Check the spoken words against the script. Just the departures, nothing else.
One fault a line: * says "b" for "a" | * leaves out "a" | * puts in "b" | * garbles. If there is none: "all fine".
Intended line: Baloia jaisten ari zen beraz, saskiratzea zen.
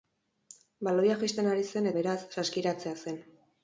all fine